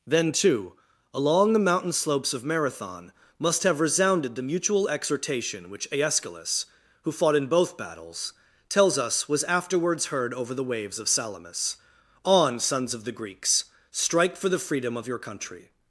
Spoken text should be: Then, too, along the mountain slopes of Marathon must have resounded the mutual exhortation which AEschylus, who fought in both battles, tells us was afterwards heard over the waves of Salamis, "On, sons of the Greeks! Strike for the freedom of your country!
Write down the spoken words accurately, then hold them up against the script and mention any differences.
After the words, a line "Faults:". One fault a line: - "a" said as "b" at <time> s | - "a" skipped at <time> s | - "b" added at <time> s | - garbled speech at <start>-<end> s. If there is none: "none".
Then, too, along the mountain slopes of Marathon must have resounded the mutual exhortation which AEschylus, who fought in both battles, tells us was afterwards heard over the waves of Salamis, "On, sons of the Greeks! Strike for the freedom of your country!
Faults:
none